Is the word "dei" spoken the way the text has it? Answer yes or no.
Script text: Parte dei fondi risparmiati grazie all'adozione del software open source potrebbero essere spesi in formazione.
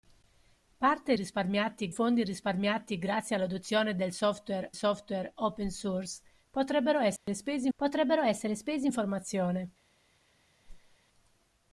no